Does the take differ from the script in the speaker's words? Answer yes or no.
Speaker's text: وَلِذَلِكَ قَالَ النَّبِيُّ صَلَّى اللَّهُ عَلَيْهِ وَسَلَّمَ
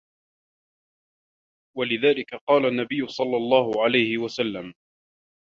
no